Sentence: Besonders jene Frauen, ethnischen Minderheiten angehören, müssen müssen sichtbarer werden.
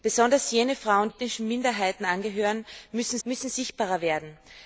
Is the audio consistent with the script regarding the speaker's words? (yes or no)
yes